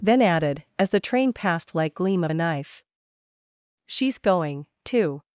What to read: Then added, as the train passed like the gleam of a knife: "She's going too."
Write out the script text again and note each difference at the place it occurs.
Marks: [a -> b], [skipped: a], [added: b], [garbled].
Then added, as the train passed like [skipped: the] gleam of a knife: "She's going too."